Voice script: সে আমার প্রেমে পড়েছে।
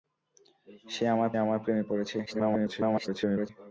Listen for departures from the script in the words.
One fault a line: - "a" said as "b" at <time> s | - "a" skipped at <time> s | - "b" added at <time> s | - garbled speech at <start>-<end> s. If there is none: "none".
- "আমার" added at 1.4 s
- garbled speech at 2.3-3.5 s